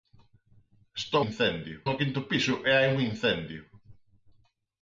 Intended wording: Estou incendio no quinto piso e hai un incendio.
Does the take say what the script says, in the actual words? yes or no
yes